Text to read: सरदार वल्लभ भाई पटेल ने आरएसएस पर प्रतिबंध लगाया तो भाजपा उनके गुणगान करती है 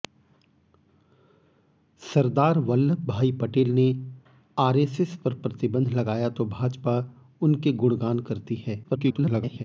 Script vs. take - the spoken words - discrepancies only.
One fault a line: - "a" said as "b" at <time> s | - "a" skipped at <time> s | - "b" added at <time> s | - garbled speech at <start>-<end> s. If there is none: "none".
- garbled speech at 8.8-9.6 s